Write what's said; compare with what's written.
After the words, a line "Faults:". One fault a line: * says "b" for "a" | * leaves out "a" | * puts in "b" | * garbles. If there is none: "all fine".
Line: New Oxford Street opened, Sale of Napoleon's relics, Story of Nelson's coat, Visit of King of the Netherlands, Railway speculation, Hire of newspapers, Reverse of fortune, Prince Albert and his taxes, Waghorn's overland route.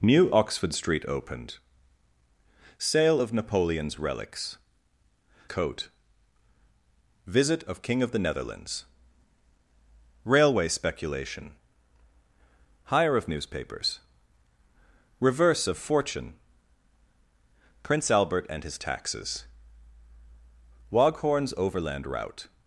New Oxford Street opened, Sale of Napoleon's relics, Coat, Visit of King of the Netherlands, Railway speculation, Hire of newspapers, Reverse of fortune, Prince Albert and his taxes, Waghorn's overland route.
Faults:
* leaves out "Story of Nelson's"